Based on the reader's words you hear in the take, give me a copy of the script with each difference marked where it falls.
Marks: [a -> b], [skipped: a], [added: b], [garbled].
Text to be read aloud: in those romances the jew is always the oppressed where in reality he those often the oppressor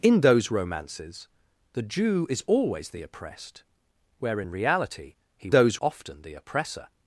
in those romances the jew is always the oppressed where in reality he those often the oppressor